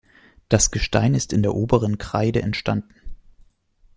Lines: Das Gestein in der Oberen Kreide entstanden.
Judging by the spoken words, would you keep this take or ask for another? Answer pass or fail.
fail